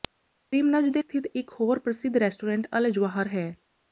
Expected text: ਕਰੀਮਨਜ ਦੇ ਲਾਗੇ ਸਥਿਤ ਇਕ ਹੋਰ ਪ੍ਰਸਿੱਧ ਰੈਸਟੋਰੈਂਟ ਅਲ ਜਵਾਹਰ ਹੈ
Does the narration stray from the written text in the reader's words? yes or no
yes